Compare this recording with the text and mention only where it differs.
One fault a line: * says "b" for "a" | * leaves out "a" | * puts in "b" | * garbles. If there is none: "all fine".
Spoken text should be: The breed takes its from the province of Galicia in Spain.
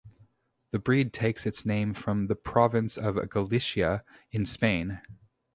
* puts in "name"